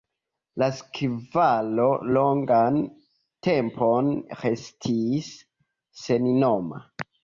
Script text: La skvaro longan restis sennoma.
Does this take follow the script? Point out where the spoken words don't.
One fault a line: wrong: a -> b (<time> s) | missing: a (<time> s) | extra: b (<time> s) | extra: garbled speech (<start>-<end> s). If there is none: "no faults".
extra: tempon (3.5 s)